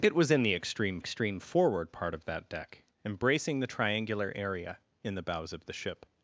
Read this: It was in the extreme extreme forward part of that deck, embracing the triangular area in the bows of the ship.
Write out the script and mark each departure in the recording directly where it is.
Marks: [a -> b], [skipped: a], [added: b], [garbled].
It was in the extreme extreme forward part of that deck, embracing the triangular area in the bows of the ship.